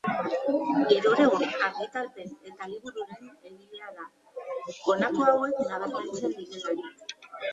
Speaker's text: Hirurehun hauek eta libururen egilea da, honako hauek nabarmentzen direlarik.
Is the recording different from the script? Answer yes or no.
yes